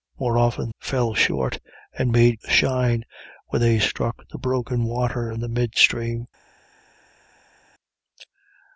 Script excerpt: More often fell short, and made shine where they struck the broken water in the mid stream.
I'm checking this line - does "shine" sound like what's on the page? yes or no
yes